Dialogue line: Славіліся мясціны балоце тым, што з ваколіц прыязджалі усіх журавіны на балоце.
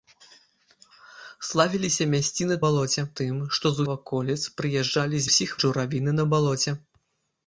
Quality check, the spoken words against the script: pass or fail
pass